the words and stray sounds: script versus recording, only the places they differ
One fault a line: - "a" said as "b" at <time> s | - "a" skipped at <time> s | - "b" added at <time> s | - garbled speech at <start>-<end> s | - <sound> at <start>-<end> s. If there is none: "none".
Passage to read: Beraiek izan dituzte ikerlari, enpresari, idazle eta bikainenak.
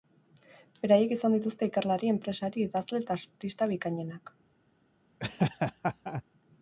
- "artista" added at 3.2 s
- laugh at 5.2-6.2 s